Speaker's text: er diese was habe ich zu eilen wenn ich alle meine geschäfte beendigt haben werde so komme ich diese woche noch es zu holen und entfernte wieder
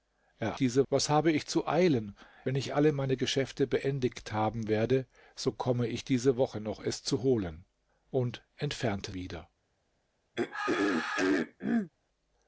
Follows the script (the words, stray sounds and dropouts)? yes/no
no